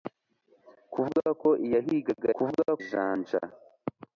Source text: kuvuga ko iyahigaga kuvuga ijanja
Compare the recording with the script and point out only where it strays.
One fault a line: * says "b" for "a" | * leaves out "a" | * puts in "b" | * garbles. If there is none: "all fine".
all fine